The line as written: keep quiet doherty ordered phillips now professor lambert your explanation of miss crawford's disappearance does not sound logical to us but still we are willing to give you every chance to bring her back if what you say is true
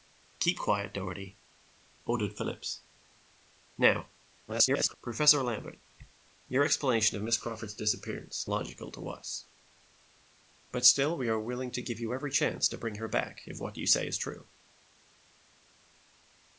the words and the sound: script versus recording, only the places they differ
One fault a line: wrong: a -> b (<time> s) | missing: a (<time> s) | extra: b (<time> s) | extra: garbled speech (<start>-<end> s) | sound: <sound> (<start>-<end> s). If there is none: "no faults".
extra: garbled speech (4.5-4.9 s)
missing: does not sound (8.4 s)